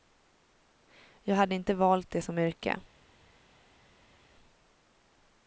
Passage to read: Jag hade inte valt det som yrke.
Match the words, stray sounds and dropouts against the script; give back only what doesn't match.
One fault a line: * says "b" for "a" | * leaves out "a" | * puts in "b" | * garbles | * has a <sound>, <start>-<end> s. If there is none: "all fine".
all fine